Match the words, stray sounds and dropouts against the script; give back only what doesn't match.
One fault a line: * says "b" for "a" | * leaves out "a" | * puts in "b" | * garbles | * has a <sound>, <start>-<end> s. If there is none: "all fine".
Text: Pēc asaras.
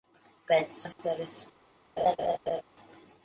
* has a dropout, 0.9-1.0 s
* has a laugh, 2.0-2.6 s